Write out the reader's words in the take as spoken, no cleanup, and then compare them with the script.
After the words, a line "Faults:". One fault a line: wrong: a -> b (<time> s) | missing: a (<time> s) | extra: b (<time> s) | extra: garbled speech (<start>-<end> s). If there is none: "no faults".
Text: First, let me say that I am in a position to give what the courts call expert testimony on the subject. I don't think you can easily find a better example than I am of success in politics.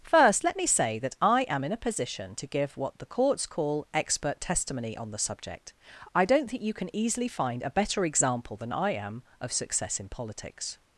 First, let me say that I am in a position to give what the courts call expert testimony on the subject. I don't think you can easily find a better example than I am of success in politics.
Faults:
no faults